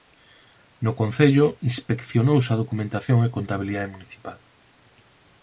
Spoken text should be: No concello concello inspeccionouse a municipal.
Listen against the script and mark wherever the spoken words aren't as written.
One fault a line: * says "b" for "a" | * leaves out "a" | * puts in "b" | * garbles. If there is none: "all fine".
* leaves out "concello"
* puts in "documentación e contabilidade"